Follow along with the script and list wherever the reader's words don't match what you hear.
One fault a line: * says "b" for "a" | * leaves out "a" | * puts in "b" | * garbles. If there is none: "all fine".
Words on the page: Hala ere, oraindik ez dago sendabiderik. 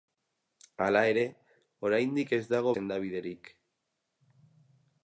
all fine